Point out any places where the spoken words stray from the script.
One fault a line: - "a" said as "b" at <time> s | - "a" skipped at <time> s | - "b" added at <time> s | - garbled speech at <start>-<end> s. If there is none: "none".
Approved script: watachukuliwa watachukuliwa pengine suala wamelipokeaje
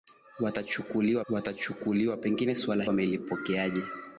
none